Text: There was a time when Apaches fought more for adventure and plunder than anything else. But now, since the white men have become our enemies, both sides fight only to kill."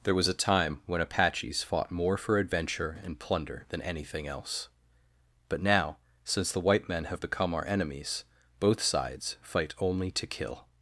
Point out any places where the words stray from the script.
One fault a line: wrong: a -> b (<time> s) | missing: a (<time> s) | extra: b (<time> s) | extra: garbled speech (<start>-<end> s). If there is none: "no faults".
no faults